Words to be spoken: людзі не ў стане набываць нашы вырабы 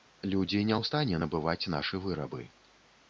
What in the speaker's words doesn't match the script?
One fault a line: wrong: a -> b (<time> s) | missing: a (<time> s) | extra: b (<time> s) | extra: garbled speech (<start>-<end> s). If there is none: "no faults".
no faults